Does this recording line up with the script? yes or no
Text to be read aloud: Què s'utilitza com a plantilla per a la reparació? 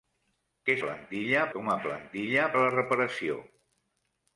no